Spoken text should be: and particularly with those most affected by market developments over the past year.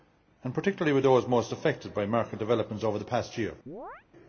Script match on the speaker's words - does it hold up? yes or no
yes